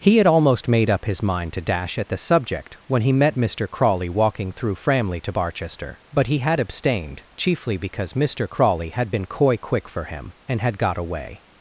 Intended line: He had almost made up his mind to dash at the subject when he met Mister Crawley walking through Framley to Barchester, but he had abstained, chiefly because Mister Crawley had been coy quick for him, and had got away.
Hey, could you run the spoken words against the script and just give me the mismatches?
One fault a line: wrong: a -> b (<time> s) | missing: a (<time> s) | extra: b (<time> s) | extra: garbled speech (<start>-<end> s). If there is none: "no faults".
no faults